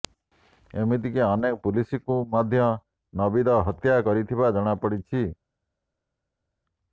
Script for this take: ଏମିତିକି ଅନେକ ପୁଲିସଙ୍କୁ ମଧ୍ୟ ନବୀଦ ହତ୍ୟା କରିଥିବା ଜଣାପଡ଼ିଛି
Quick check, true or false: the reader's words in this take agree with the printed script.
true